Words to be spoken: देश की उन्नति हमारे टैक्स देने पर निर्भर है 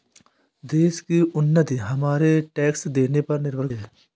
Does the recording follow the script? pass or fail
pass